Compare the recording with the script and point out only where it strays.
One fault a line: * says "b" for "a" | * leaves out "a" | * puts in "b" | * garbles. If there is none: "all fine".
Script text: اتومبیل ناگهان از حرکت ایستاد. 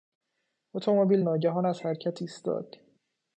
all fine